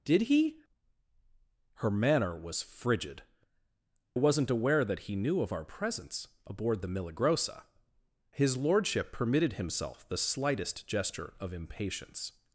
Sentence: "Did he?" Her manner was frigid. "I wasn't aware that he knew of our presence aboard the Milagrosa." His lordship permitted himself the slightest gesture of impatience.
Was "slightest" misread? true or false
false